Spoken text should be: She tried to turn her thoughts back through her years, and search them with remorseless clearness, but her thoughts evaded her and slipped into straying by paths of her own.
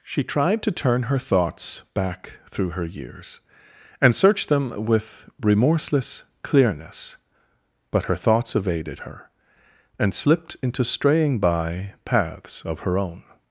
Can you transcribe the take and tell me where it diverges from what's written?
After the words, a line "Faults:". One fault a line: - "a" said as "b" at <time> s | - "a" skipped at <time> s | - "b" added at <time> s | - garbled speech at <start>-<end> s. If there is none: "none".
She tried to turn her thoughts back through her years, and search them with remorseless clearness, but her thoughts evaded her and slipped into straying by paths of her own.
Faults:
none